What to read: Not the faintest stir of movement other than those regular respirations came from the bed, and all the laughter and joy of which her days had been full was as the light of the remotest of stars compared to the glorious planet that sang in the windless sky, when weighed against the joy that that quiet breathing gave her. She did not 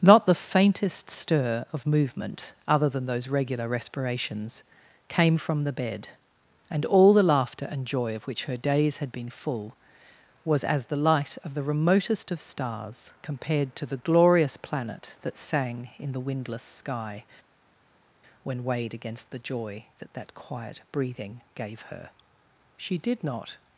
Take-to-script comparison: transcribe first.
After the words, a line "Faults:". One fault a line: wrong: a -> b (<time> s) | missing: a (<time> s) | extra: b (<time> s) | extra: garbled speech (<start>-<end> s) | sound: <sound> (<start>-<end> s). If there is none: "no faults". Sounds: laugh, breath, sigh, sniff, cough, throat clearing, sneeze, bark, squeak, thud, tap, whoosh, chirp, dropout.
Not the faintest stir of movement other than those regular respirations came from the bed, and all the laughter and joy of which her days had been full was as the light of the remotest of stars compared to the glorious planet that sang in the windless sky, when weighed against the joy that that quiet breathing gave her. She did not
Faults:
no faults